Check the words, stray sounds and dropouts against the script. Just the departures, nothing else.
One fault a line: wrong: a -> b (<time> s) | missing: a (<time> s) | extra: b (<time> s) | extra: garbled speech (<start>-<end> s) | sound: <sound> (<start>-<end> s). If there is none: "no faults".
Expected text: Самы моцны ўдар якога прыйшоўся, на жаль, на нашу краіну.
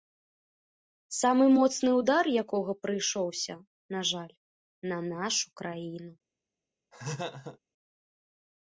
sound: laugh (6.9-7.6 s)